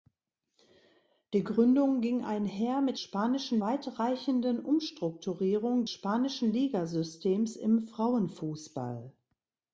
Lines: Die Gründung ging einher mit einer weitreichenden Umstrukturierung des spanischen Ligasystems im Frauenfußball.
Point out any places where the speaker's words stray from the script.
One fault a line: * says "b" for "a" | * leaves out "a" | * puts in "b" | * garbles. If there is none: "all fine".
* says "spanischen" for "einer"
* leaves out "des"